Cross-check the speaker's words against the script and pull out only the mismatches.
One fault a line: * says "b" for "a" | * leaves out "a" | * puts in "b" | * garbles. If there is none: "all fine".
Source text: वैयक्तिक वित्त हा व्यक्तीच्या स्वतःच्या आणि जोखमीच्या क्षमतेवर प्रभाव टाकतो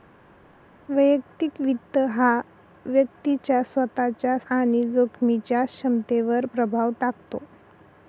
all fine